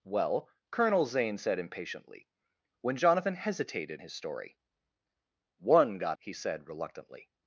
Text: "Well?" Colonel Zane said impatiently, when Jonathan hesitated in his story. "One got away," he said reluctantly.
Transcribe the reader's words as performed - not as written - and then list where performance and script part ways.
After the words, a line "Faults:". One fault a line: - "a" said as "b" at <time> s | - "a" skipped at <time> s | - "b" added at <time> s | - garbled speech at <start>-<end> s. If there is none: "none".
"Well?" Colonel Zane said impatiently, when Jonathan hesitated his story. "One got," he said reluctantly.
Faults:
- "in" skipped at 4.0 s
- "away" skipped at 6.2 s